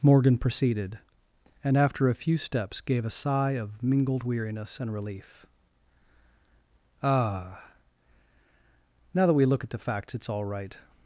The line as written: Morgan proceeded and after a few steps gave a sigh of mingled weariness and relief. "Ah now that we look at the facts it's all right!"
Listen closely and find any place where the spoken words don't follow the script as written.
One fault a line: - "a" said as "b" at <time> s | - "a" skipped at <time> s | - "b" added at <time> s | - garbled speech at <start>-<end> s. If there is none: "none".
none